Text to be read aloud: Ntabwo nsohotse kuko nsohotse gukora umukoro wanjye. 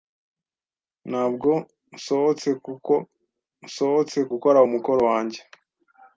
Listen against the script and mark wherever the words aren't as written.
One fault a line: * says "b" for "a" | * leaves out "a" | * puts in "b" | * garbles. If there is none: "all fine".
all fine